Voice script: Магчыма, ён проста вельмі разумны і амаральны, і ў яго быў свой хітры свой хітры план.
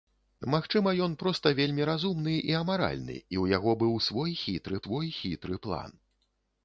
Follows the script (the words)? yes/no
yes